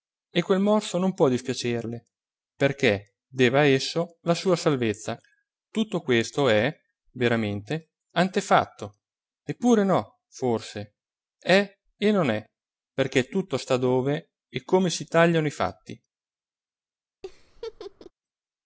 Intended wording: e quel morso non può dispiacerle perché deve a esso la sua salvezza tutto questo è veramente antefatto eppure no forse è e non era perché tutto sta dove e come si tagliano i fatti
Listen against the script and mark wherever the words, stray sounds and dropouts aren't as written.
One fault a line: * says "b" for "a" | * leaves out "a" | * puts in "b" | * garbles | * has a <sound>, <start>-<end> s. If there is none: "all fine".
* says "è" for "era"
* has a laugh, 17.2-18.1 s